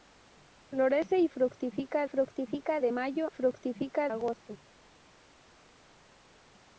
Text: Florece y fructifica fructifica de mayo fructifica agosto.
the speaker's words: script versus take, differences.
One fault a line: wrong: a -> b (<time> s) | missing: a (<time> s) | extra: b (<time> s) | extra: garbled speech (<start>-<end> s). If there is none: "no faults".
no faults